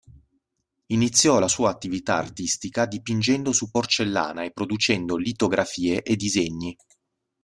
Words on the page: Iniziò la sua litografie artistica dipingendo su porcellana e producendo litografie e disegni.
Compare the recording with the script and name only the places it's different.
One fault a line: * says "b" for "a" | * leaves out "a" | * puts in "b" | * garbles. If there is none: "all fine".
* says "attività" for "litografie"